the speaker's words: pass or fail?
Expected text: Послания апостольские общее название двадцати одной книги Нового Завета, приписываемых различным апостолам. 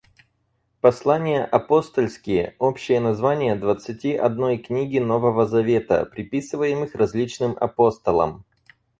pass